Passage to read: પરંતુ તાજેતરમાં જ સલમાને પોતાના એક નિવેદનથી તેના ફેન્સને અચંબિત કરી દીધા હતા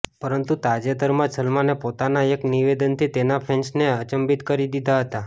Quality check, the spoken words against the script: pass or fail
pass